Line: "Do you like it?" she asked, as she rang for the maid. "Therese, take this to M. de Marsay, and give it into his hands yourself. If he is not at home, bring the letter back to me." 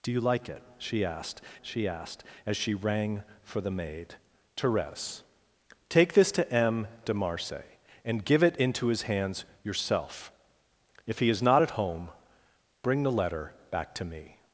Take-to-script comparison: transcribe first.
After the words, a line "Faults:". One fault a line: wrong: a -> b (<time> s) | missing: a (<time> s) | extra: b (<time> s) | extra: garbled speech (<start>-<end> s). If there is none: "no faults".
"Do you like it?" she asked she asked, as she rang for the maid. "Therese, take this to M. de Marsay, and give it into his hands yourself. If he is not at home, bring the letter back to me."
Faults:
extra: she asked (1.6 s)